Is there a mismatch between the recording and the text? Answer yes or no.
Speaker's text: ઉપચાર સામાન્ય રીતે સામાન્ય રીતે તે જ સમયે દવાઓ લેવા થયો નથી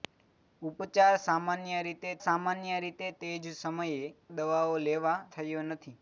no